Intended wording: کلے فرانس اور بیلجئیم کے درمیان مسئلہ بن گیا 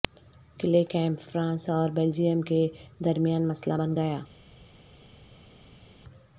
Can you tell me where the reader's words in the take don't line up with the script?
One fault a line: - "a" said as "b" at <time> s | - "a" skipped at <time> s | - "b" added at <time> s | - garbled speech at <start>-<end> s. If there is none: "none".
- "کیمپ" added at 0.8 s